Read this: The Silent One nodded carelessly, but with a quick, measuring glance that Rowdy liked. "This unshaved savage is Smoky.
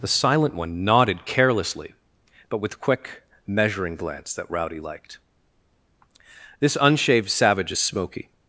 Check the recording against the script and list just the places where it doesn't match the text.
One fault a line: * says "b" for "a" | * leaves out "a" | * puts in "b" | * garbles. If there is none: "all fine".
* leaves out "a"